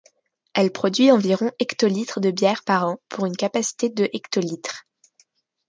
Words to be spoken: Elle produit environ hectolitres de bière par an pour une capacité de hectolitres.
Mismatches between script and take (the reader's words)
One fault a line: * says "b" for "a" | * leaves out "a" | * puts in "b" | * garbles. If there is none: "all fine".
all fine